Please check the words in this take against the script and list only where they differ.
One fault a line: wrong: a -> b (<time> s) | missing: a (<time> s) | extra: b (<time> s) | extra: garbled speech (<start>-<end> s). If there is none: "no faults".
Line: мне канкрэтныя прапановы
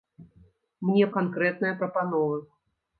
no faults